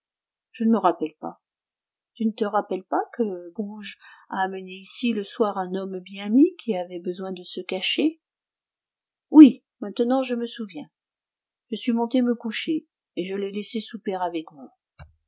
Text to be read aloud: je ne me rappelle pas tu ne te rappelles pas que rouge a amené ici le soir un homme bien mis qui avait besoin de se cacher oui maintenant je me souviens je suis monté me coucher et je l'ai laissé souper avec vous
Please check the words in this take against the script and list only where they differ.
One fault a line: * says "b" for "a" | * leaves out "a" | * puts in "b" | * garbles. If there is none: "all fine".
all fine